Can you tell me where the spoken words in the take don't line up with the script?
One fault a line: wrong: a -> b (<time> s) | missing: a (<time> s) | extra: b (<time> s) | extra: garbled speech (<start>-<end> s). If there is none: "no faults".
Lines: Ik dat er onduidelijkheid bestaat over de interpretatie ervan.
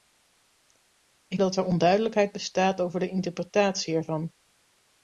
no faults